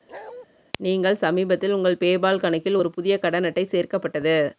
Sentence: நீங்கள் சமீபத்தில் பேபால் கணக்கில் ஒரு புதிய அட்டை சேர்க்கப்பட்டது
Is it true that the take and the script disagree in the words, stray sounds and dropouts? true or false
true